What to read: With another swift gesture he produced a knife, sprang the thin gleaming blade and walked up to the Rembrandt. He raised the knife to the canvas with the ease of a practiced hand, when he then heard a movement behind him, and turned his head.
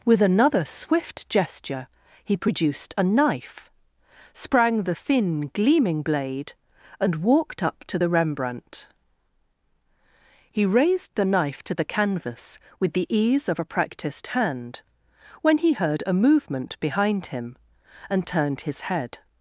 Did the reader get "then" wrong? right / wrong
wrong